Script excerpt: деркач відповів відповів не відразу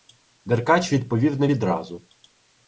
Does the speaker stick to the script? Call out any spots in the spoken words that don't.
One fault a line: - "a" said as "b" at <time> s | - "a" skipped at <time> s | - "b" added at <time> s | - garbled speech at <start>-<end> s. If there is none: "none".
- "відповів" skipped at 1.4 s